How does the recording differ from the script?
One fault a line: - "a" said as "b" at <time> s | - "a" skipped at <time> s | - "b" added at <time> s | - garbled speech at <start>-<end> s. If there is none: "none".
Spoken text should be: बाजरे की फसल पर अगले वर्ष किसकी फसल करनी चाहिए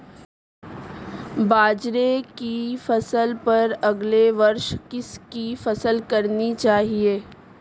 none